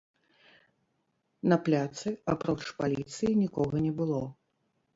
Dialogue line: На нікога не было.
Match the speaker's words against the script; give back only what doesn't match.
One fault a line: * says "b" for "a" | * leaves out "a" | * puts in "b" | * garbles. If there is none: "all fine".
* puts in "пляцы апроч паліцыі"